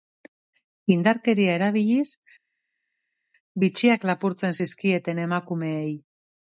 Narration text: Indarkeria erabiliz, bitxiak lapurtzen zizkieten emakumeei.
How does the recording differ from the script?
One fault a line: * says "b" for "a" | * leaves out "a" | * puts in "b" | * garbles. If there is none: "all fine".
all fine